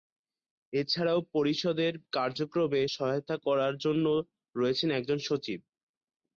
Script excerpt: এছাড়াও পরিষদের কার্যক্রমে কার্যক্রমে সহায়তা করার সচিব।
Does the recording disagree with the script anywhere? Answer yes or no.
yes